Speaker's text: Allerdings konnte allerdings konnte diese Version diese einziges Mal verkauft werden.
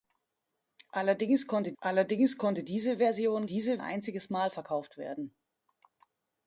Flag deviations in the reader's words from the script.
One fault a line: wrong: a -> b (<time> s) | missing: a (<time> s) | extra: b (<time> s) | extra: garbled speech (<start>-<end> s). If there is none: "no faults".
no faults